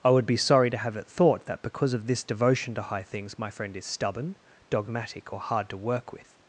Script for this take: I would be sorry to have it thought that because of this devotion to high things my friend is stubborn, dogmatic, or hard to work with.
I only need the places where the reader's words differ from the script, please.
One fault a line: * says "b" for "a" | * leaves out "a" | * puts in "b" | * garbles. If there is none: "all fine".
all fine